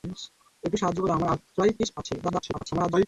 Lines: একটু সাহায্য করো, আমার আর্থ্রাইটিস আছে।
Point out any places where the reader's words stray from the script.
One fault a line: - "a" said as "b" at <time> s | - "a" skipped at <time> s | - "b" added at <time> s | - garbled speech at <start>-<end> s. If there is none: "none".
- garbled speech at 2.2-3.1 s